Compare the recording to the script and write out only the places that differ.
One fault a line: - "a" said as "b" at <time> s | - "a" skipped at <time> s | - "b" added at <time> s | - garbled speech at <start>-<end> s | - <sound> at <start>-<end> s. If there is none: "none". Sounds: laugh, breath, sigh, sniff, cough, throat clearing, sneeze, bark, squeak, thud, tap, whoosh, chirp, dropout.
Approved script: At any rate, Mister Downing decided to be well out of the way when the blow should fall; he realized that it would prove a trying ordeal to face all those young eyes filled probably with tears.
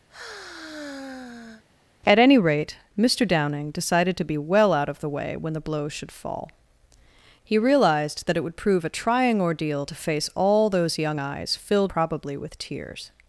- sigh at 0.1-1.6 s